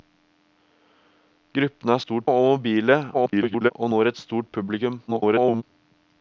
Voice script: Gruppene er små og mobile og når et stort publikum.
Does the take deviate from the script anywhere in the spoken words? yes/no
yes